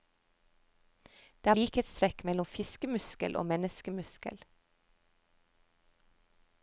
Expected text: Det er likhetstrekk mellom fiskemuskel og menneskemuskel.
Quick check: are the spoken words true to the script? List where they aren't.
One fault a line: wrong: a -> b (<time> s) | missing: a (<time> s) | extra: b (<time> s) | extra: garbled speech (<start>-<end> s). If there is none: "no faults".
no faults